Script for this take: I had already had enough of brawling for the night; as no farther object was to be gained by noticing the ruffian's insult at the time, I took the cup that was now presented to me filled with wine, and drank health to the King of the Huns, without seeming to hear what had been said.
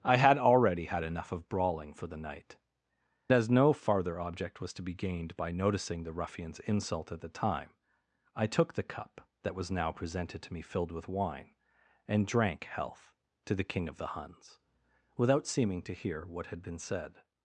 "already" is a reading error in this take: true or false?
false